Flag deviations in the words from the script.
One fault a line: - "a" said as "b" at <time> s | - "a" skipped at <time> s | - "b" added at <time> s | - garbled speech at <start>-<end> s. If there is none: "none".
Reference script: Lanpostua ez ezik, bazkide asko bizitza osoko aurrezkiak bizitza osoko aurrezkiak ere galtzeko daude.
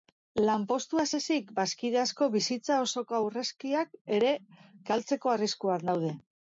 - "bizitza osoko aurrezkiak" skipped at 4.0 s
- "arriskuan" added at 5.4 s